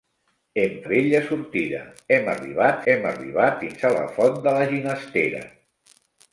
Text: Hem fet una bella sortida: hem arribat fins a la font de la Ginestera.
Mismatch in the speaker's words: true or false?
true